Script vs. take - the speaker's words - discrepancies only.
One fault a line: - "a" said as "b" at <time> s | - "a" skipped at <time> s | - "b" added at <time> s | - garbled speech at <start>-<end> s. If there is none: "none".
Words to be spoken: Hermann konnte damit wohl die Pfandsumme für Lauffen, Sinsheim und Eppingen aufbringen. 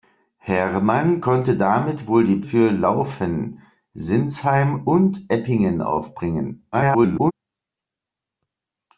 - "Pfandsumme" skipped at 2.4 s
- garbled speech at 6.7-7.3 s